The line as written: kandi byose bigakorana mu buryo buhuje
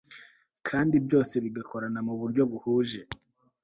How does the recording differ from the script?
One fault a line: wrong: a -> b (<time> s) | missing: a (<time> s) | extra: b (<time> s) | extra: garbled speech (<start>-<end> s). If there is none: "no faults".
no faults